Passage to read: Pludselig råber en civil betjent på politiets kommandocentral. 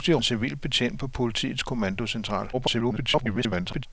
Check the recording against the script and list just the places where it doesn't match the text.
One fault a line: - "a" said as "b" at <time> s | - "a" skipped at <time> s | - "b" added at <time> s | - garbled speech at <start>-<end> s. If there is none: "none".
- "råber" skipped at 0.2 s
- garbled speech at 2.5-3.9 s